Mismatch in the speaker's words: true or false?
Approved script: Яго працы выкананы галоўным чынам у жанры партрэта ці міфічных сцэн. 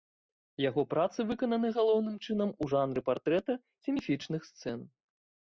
false